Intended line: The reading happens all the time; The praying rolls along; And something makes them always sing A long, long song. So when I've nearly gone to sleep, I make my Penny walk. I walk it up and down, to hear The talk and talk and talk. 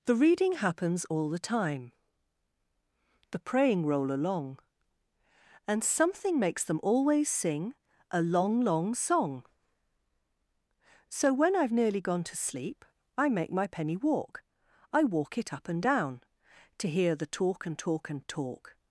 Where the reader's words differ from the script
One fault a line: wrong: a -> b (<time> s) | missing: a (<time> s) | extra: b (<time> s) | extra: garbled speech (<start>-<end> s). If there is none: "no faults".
wrong: rolls -> roll (3.9 s)